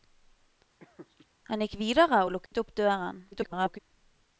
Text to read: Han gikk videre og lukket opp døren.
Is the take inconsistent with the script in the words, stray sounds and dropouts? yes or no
yes